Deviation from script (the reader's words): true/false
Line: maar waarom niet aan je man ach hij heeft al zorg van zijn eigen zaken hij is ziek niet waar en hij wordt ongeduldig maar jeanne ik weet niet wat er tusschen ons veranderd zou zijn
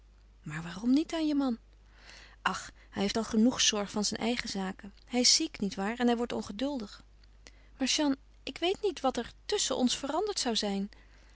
true